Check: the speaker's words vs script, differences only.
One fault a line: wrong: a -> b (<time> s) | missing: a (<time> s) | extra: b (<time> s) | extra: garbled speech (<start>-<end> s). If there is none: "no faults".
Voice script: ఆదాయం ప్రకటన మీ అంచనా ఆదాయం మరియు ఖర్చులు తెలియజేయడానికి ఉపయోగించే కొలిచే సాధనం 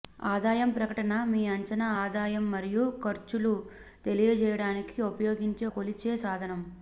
no faults